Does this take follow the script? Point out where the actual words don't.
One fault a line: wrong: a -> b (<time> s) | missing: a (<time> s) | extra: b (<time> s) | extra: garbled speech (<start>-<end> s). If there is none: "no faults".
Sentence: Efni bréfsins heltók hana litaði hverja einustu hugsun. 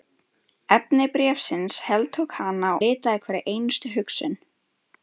no faults